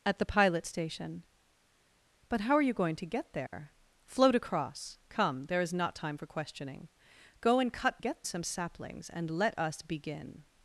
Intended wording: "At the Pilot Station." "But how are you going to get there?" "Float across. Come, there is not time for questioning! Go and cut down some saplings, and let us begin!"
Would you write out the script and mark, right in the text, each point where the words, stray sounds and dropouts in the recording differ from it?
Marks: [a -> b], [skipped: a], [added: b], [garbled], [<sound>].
"At the Pilot Station." "But how are you going to get there?" [dropout] "Float across. Come, there is not time for questioning! Go and cut [down -> get] some saplings, and let us begin!"